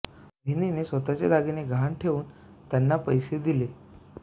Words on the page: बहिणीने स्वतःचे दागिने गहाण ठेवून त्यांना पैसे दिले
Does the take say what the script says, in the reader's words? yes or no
yes